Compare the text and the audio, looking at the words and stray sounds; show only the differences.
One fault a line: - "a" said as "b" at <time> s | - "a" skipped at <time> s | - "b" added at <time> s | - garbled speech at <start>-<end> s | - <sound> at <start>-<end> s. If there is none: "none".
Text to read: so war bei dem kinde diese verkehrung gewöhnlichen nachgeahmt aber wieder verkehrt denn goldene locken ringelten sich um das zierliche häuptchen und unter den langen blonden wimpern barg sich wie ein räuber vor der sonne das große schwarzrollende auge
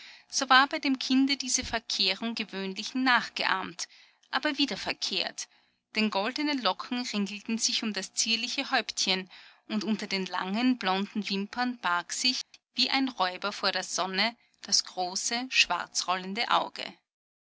- dropout at 12.4-12.5 s